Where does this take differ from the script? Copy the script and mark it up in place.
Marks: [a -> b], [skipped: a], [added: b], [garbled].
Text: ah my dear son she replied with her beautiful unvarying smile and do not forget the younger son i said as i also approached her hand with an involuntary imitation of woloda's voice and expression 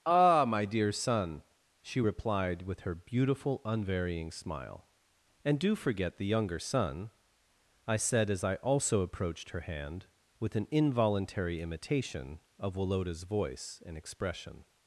ah my dear son she replied with her beautiful unvarying smile and do [skipped: not] forget the younger son i said as i also approached her hand with an involuntary imitation of woloda's voice and expression